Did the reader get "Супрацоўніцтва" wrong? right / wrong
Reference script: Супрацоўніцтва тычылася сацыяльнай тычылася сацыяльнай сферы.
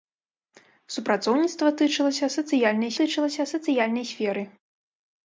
right